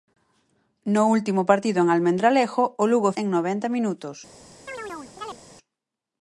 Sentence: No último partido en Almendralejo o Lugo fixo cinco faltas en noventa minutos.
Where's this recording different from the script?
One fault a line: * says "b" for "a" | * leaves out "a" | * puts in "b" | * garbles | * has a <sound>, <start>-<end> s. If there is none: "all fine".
* leaves out "fixo cinco faltas"
* has a chirp, 4.7-5.4 s